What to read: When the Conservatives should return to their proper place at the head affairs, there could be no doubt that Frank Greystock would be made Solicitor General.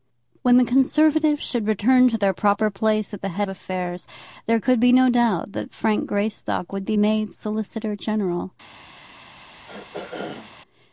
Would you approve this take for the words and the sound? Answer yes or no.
no